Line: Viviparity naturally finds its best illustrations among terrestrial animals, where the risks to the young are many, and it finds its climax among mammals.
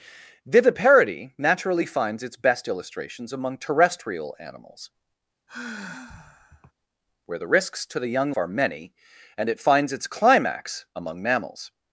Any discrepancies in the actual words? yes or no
no